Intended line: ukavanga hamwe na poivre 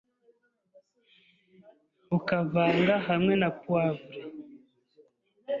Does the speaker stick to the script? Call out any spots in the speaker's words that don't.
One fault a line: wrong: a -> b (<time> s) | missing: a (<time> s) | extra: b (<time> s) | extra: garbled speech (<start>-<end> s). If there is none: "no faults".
no faults